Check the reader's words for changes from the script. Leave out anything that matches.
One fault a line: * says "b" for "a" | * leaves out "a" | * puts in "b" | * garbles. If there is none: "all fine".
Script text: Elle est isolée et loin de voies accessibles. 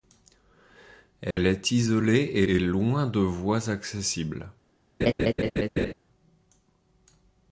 * puts in "et"